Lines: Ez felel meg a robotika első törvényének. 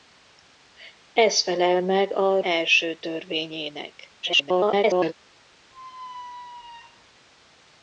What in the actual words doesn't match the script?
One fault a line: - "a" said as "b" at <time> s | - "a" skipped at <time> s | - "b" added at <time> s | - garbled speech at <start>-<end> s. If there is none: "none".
- "robotika" skipped at 2.4 s
- garbled speech at 4.2-5.1 s